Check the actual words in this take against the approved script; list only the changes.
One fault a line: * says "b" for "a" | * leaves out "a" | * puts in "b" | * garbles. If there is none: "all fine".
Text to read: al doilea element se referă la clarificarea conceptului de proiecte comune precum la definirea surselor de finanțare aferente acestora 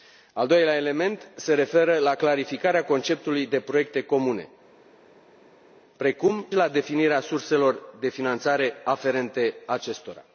all fine